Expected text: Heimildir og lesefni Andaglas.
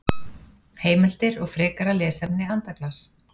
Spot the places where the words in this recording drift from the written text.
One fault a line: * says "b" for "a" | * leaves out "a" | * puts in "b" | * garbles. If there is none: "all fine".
* puts in "frekara"